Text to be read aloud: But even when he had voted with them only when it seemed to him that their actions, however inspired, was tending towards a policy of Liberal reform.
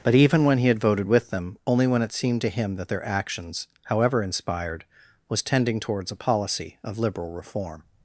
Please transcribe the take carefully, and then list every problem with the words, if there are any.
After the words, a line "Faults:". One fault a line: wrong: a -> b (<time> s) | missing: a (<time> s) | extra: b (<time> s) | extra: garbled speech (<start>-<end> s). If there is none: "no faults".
But even when he had voted with them only when it seemed to him that their actions, however inspired, was tending towards a policy of Liberal reform.
Faults:
no faults